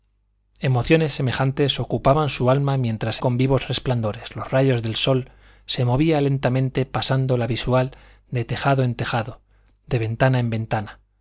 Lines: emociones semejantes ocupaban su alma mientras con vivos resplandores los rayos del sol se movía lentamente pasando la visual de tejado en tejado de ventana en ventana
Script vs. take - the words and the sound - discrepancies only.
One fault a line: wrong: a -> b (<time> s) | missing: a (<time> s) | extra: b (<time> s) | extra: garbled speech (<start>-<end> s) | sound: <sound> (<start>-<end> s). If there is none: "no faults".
no faults